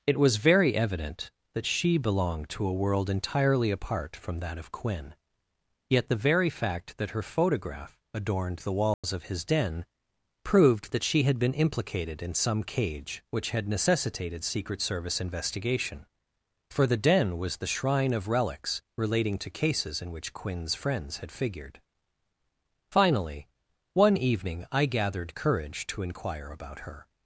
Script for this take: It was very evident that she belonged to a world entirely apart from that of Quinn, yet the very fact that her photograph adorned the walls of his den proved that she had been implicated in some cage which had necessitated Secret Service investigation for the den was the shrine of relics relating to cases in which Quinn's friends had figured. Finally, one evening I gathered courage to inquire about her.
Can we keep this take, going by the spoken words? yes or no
yes